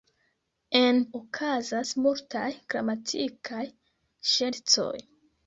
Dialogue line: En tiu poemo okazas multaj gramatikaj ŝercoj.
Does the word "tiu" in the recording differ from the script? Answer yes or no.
yes